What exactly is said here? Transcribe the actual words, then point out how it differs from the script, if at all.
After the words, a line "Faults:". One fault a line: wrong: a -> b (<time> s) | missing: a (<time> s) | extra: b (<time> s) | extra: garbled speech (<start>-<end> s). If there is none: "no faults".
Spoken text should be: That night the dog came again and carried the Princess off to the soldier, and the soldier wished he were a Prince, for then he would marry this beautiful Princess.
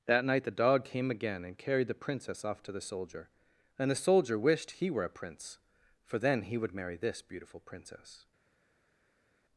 That night the dog came again and carried the Princess off to the soldier, and the soldier wished he were a Prince, for then he would marry this beautiful Princess.
Faults:
no faults